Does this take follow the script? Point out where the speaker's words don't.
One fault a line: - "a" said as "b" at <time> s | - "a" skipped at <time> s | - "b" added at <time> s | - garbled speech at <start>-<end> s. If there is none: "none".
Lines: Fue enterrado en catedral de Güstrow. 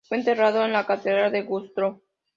- "la" added at 0.7 s